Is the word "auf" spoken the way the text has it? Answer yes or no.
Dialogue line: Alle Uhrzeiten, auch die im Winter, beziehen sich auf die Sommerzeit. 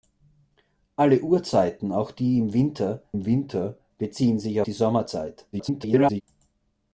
no